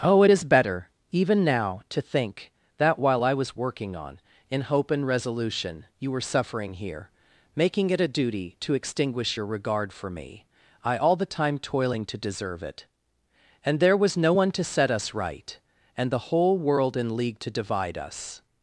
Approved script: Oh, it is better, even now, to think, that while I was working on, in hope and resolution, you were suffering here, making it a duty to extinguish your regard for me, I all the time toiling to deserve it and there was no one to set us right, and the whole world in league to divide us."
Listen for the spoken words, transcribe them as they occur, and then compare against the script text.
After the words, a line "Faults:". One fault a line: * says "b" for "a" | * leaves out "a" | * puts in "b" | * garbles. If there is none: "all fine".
Oh, it is better, even now, to think, that while I was working on, in hope and resolution, you were suffering here, making it a duty to extinguish your regard for me, I all the time toiling to deserve it and there was no one to set us right, and the whole world in league to divide us."
Faults:
all fine